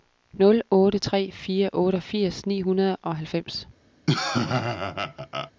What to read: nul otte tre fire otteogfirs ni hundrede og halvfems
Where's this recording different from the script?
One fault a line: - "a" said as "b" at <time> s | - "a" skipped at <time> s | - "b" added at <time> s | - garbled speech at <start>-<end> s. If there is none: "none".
none